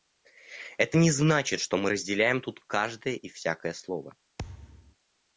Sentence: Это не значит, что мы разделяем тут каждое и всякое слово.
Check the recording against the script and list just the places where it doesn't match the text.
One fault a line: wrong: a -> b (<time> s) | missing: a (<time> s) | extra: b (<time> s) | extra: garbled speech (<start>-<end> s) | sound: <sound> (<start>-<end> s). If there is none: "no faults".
sound: thud (4.4-5.0 s)